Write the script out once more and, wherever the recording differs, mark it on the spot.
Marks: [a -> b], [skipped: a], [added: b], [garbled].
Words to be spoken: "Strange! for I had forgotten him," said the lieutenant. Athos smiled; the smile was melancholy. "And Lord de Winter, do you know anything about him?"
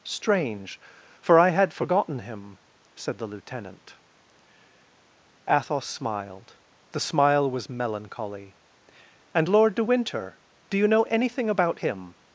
"Strange! for I had forgotten him," said the lieutenant. Athos smiled; the smile was melancholy. "And Lord de Winter, do you know anything about him?"